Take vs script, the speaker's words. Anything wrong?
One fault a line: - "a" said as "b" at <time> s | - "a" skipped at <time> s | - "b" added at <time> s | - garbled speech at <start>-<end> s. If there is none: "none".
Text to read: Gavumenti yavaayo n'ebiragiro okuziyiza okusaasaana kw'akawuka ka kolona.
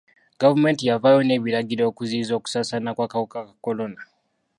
none